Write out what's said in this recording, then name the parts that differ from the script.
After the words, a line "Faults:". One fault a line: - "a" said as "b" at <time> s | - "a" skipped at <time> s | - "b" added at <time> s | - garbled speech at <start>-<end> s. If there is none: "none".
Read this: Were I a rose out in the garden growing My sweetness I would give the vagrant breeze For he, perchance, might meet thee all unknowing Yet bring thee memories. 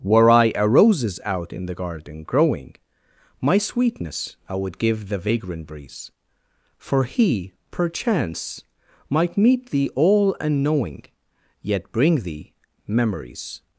Were I a roses out in the garden growing My sweetness I would give the vagrant breeze For he, perchance, might meet thee all unknowing Yet bring thee memories.
Faults:
- "rose" said as "roses" at 0.7 s